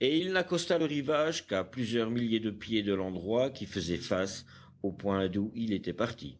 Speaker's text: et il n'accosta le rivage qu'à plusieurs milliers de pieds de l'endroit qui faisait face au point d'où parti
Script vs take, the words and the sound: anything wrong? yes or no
yes